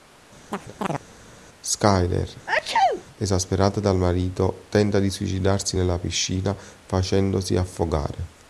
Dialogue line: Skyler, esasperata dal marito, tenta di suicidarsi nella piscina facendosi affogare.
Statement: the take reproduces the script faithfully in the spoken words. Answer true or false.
true